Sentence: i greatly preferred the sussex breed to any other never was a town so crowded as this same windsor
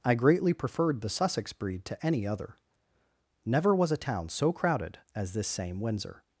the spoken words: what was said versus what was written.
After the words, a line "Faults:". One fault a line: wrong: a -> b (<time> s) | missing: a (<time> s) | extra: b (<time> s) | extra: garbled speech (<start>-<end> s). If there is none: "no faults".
i greatly preferred the sussex breed to any other never was a town so crowded as this same windsor
Faults:
no faults